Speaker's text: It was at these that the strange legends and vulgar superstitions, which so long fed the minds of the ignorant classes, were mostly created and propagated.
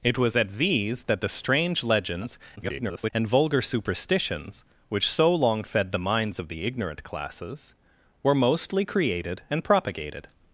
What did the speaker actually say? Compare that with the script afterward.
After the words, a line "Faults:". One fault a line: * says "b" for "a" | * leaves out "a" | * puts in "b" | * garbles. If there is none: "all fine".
It was at these that the strange legends [garbled] and vulgar superstitions, which so long fed the minds of the ignorant classes, were mostly created and propagated.
Faults:
* garbles